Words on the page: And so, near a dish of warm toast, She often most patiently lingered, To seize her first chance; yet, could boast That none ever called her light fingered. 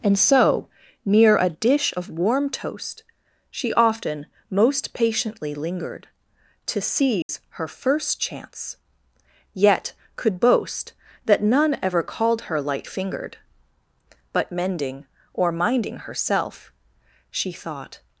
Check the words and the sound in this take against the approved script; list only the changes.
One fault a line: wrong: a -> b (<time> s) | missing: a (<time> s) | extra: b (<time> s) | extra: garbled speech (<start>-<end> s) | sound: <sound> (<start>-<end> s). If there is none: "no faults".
sound: dropout (7.2-7.3 s)
extra: But mending or minding herself She thought (14.3 s)